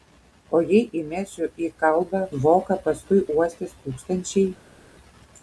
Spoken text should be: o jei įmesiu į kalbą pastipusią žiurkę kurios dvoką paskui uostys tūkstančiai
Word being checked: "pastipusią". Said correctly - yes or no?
no